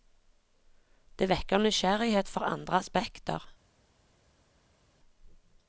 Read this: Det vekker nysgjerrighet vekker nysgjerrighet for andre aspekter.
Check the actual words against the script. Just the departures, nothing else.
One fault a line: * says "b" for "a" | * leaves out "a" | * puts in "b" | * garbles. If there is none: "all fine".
* leaves out "vekker nysgjerrighet"